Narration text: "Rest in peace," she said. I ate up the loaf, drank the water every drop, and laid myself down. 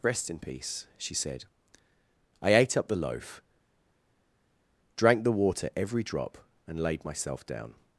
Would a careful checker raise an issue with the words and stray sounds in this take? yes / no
no